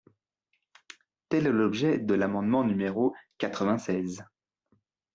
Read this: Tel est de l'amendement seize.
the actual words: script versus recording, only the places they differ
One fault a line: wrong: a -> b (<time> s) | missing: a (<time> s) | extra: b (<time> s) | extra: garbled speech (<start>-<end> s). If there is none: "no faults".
extra: l'objet (1.5 s)
extra: numéro quatre vingt (2.6 s)